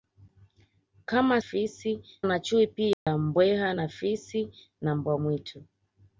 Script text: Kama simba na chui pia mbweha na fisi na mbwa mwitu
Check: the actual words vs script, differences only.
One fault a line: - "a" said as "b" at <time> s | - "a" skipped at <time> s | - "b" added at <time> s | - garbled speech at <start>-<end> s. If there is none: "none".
- "simba" said as "fisi" at 1.4 s